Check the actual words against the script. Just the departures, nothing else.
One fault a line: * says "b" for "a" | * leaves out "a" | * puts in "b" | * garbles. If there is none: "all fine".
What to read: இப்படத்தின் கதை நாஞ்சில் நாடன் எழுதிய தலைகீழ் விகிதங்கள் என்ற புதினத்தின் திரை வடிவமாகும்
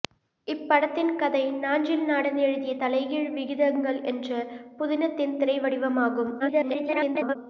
* garbles